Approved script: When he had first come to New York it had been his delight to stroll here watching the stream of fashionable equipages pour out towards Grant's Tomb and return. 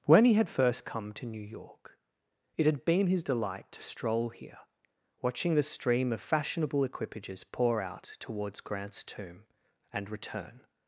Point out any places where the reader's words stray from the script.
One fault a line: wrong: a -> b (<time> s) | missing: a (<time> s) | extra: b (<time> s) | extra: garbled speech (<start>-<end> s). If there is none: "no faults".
no faults